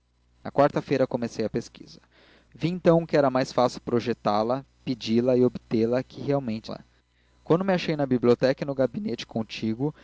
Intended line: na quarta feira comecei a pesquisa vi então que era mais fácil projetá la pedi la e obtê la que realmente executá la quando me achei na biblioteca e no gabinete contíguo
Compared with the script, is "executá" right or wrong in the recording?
wrong